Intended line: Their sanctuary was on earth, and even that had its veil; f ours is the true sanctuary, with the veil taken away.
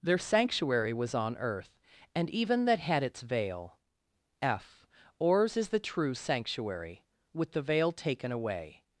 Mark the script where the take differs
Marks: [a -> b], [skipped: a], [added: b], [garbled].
Their sanctuary was on earth, and even that had its veil; f ours is the true sanctuary, with the veil taken away.